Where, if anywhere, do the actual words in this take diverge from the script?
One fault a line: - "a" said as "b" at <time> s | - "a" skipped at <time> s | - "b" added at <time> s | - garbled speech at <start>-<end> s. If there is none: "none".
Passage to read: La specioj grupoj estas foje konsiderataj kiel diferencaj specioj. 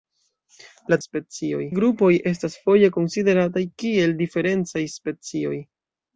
none